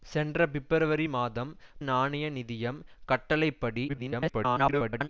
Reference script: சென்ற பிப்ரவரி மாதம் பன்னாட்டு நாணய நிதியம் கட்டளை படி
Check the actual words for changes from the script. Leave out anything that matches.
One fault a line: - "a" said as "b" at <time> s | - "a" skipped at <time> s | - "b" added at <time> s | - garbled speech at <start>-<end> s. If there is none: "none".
- "பன்னாட்டு" skipped at 1.5 s
- garbled speech at 3.9-5.1 s